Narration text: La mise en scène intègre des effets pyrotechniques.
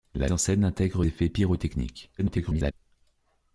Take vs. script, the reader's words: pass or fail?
fail